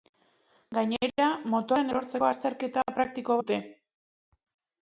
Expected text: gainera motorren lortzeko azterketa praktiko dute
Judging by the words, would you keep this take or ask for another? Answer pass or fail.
pass